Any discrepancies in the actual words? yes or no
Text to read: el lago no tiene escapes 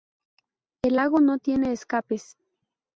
no